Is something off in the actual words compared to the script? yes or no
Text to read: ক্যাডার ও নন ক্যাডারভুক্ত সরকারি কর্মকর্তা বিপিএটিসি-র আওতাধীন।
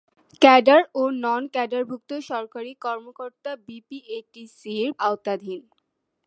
no